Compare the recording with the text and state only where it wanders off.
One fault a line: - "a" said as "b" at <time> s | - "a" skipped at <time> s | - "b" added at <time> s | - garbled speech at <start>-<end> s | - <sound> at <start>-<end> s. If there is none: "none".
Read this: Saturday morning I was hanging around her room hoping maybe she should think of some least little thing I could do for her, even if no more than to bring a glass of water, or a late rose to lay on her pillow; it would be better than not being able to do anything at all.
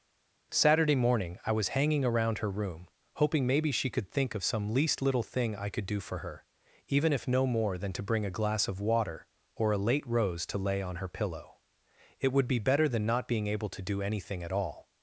- "should" said as "could" at 3.9 s